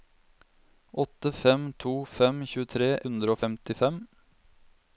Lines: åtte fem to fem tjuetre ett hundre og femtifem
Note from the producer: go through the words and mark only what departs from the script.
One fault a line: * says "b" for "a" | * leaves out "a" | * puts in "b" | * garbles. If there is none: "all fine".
* leaves out "ett"